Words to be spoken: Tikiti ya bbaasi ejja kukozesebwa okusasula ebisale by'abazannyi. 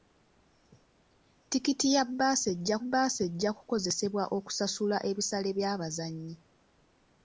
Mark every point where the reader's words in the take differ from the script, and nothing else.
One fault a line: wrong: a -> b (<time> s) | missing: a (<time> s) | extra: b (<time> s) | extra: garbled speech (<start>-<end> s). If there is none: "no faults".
extra: bbaasi ejja (2.8 s)